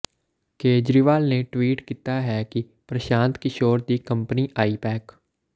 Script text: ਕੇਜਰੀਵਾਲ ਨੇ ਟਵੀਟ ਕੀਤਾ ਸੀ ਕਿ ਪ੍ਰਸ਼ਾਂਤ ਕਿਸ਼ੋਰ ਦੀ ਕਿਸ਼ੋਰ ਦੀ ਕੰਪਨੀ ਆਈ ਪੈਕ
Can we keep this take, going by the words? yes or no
no